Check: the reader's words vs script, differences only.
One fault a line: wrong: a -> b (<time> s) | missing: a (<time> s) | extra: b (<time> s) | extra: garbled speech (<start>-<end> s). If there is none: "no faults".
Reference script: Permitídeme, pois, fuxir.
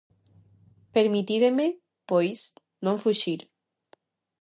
extra: non (2.8 s)